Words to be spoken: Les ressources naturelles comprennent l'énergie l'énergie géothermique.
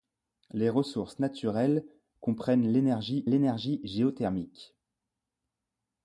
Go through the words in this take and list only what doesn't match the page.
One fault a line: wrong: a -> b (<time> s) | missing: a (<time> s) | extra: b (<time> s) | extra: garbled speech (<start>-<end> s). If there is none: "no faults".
no faults